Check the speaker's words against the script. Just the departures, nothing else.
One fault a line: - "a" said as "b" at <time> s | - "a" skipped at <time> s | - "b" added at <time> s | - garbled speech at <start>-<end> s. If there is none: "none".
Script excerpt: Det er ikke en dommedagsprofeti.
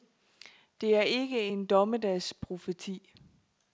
none